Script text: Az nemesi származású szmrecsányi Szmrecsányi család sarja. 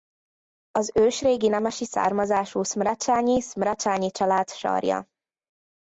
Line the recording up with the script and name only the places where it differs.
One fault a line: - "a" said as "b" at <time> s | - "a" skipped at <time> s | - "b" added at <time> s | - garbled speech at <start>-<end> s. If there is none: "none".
- "ősrégi" added at 0.9 s